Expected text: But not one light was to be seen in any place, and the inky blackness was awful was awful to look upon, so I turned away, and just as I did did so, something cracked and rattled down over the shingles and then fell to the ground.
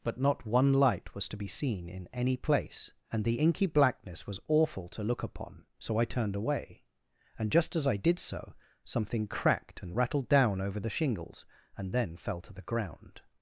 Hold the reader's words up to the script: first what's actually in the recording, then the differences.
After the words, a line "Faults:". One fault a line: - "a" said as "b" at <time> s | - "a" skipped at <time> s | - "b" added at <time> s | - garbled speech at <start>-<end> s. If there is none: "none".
But not one light was to be seen in any place, and the inky blackness was awful to look upon, so I turned away, and just as I did so, something cracked and rattled down over the shingles and then fell to the ground.
Faults:
- "was awful" skipped at 4.9 s
- "did" skipped at 8.2 s